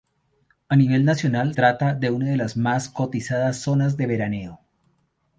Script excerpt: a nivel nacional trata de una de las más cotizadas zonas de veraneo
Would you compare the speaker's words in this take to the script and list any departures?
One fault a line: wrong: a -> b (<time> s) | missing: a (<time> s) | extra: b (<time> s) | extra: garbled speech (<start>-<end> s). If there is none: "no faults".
no faults